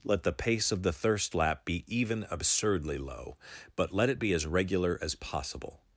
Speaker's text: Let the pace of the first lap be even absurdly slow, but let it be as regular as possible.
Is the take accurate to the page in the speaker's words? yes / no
no